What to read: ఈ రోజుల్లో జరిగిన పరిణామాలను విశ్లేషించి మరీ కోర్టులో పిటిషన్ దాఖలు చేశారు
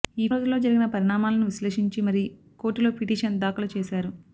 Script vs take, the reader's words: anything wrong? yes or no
no